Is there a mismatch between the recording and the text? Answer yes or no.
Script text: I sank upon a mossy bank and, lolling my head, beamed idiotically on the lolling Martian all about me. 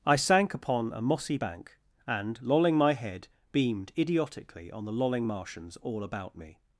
yes